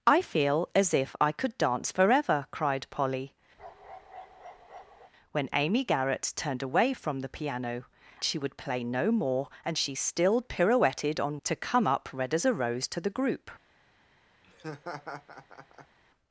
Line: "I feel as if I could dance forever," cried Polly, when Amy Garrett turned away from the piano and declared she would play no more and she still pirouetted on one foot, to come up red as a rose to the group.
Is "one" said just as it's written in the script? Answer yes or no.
no